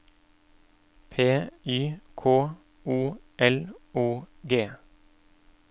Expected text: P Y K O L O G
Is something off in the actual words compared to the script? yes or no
no